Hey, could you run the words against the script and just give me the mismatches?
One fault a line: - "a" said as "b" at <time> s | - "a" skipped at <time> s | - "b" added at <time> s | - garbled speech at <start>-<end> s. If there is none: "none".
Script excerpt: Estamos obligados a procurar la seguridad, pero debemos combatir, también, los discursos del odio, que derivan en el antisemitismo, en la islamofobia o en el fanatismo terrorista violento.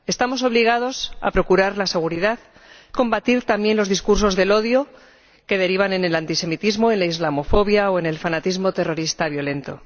- "pero debemos" skipped at 2.4 s